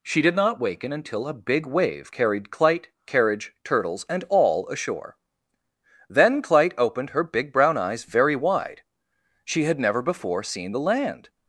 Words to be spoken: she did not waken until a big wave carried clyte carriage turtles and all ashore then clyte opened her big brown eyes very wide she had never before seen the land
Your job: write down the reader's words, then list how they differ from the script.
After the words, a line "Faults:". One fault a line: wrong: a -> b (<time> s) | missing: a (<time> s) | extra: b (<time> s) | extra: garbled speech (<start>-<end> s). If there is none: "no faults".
she did not waken until a big wave carried clyte carriage turtles and all ashore then clyte opened her big brown eyes very wide she had never before seen the land
Faults:
no faults